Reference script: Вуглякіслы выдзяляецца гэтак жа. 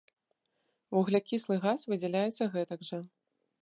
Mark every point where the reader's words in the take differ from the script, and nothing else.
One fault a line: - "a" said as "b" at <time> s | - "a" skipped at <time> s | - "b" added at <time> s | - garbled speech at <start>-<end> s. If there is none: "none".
- "газ" added at 1.7 s